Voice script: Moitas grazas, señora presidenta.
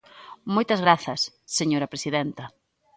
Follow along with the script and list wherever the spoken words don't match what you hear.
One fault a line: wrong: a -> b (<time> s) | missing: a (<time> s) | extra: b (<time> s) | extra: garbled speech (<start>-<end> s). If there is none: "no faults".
no faults